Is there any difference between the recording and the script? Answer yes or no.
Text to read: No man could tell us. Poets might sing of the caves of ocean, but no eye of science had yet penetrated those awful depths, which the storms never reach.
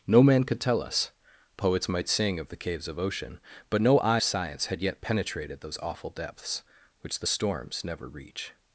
yes